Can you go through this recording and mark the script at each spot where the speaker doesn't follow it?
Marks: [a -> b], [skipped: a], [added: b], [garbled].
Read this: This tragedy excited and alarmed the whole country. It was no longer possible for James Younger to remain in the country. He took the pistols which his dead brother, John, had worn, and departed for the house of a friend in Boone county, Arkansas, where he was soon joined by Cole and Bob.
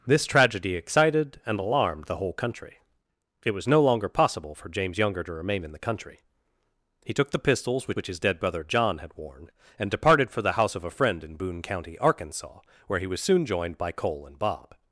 This tragedy excited and alarmed the whole country. It was no longer possible for James Younger to remain in the country. He took the pistols which [added: which] his dead brother, John, had worn, and departed for the house of a friend in Boone county, Arkansas, where he was soon joined by Cole and Bob.